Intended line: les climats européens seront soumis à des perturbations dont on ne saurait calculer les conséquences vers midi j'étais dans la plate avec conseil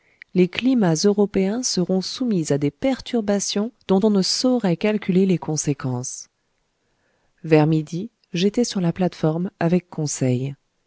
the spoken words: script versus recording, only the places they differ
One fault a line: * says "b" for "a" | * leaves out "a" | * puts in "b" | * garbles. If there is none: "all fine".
* says "sur" for "dans"
* puts in "forme"